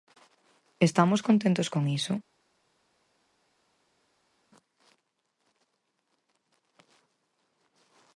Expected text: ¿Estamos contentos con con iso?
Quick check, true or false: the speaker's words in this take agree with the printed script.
false